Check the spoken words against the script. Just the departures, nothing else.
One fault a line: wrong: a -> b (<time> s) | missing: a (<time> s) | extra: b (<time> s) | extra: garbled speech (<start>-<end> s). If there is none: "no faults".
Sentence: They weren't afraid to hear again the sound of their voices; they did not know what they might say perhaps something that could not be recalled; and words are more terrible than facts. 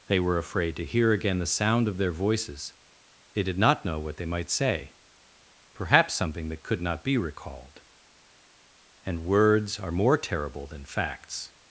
wrong: weren't -> were (0.2 s)